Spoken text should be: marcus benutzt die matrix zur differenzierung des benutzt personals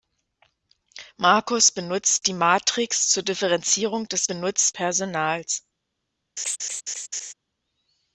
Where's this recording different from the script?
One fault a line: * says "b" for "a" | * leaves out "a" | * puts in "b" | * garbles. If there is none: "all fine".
all fine